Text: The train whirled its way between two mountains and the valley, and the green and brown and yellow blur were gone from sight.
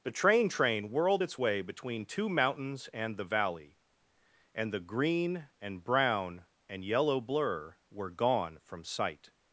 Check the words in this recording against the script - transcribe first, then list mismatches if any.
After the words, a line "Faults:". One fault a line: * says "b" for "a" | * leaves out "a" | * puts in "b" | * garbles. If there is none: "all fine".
The train train whirled its way between two mountains and the valley, and the green and brown and yellow blur were gone from sight.
Faults:
* puts in "train"